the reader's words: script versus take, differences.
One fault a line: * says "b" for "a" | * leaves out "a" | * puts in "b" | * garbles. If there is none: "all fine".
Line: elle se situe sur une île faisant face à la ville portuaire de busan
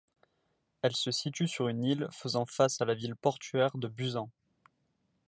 all fine